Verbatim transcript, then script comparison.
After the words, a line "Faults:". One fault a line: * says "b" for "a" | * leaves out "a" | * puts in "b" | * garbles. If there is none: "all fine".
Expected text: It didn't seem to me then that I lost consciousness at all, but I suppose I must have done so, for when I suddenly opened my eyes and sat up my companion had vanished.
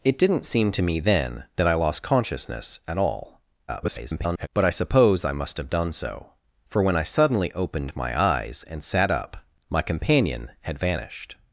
It didn't seem to me then that I lost consciousness at all, [garbled] but I suppose I must have done so, for when I suddenly opened my eyes and sat up my companion had vanished.
Faults:
* garbles